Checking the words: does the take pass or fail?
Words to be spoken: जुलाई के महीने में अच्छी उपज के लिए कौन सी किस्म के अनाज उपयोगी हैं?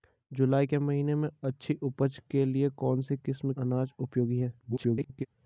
fail